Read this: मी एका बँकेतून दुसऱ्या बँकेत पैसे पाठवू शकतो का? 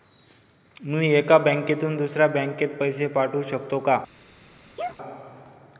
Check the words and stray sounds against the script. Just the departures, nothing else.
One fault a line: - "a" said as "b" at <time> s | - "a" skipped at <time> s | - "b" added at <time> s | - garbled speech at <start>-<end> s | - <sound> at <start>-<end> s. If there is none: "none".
- sneeze at 4.8-5.0 s